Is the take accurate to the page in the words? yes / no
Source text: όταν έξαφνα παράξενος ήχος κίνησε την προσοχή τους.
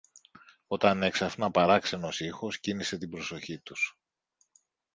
yes